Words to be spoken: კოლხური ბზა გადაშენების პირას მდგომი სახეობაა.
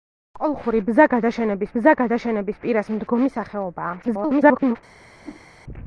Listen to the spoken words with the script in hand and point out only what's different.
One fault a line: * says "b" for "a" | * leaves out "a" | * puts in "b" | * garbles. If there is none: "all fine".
* puts in "ბზა გადაშენების"
* garbles